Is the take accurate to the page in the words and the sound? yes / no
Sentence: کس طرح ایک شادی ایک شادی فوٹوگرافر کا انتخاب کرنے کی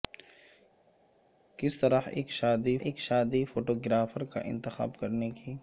yes